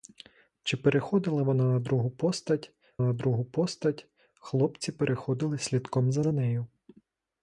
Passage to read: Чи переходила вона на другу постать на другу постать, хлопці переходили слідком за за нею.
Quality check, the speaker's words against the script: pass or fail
pass